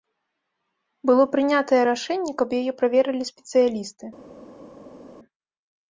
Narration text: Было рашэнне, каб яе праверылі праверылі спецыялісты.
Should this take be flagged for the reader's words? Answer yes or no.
yes